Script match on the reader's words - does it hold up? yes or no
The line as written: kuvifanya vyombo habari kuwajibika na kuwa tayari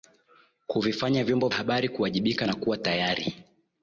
yes